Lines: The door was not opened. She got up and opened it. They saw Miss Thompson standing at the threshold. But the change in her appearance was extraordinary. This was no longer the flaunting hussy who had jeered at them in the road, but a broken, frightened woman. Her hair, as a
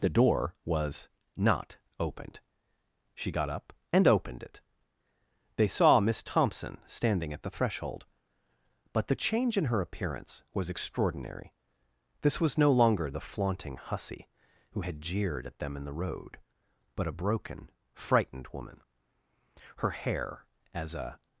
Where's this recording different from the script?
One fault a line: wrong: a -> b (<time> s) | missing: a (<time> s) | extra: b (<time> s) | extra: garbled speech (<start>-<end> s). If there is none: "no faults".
no faults